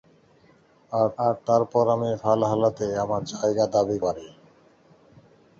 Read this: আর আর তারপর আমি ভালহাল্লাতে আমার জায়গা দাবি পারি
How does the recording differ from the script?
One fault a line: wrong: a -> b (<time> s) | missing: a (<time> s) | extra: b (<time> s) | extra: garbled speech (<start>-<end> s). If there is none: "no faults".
no faults